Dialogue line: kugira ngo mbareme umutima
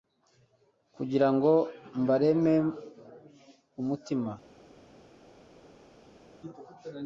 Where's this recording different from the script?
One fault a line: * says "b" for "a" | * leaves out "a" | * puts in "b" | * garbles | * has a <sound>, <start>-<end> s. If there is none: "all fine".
all fine